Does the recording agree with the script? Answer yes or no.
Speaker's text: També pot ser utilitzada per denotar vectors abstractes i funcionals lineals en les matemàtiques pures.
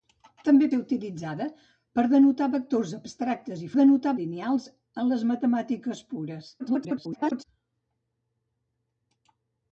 no